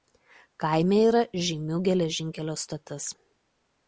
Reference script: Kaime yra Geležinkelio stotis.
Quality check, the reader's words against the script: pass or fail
fail